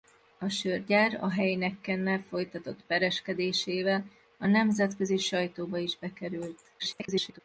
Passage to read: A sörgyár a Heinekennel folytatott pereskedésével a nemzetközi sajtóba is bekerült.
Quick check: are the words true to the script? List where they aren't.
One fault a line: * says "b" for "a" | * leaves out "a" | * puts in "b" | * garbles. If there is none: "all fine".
* garbles